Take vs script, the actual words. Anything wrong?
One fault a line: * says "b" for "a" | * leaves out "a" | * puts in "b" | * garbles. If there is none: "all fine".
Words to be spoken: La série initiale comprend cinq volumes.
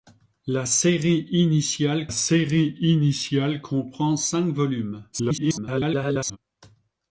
* puts in "série initiale"
* garbles